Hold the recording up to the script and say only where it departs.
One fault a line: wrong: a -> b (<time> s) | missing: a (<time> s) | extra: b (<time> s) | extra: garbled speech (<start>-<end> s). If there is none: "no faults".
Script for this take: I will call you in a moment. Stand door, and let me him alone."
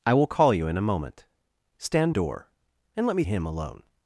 no faults